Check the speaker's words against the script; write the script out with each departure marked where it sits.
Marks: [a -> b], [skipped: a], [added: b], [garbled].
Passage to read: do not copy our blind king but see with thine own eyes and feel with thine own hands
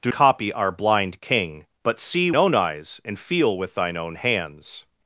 do [skipped: not] copy our blind king but see [skipped: with thine] own eyes and feel with thine own hands